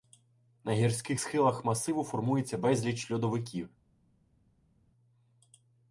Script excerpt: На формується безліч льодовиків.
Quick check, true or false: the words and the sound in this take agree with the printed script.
false